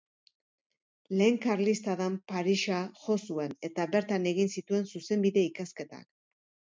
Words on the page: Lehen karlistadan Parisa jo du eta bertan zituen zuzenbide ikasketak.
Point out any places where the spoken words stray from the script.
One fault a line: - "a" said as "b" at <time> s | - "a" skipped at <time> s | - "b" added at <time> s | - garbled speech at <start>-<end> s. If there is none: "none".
- "du" said as "zuen" at 3.3 s
- "egin" added at 4.3 s